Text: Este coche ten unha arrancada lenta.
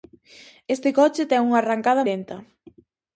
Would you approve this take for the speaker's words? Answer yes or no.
yes